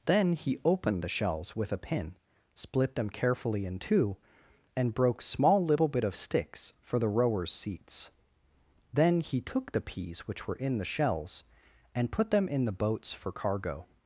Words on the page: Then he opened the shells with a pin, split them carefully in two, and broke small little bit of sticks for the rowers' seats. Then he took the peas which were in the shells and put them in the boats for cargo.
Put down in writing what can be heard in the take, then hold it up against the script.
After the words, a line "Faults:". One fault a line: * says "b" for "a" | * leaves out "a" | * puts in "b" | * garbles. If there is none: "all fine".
Then he opened the shells with a pin, split them carefully in two, and broke small little bit of sticks for the rowers' seats. Then he took the peas which were in the shells and put them in the boats for cargo.
Faults:
all fine